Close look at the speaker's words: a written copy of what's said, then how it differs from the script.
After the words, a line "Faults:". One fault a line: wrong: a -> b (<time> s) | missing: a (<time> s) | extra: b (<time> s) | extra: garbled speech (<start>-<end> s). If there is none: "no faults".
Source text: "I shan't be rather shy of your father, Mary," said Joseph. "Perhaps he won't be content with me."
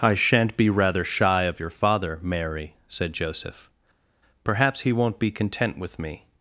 "I shan't be rather shy of your father, Mary," said Joseph. "Perhaps he won't be content with me."
Faults:
no faults